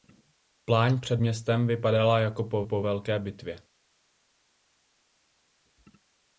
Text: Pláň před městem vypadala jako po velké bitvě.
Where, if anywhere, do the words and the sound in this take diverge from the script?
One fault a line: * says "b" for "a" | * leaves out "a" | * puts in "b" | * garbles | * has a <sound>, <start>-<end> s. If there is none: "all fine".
* puts in "po"